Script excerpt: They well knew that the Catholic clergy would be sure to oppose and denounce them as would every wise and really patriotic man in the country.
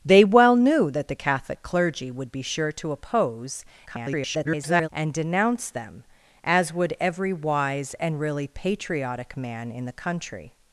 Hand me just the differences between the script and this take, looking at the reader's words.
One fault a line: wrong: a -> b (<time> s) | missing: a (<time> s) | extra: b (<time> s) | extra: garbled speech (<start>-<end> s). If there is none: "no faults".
extra: garbled speech (3.9-4.9 s)